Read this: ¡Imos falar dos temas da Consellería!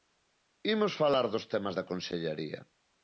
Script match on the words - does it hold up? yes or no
yes